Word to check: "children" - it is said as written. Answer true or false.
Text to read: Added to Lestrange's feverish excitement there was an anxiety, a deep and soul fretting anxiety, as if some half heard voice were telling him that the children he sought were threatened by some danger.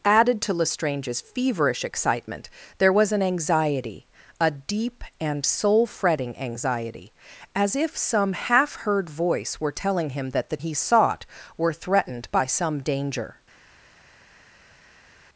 false